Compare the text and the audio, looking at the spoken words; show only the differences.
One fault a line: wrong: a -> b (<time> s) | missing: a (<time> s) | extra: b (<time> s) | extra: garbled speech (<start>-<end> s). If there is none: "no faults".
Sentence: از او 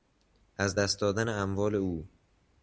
extra: دست دادن اموال (0.7 s)